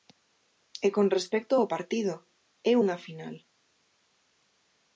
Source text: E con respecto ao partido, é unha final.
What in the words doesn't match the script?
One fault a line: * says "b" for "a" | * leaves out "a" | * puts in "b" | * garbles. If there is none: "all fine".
all fine